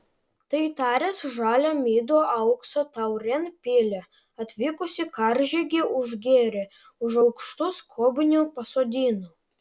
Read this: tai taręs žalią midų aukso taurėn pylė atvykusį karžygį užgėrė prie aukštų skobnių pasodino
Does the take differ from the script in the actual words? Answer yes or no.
yes